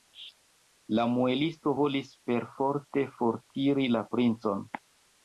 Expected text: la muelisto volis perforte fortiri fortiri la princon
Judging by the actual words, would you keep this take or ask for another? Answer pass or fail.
fail